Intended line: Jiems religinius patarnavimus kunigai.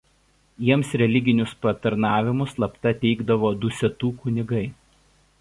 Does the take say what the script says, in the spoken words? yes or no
no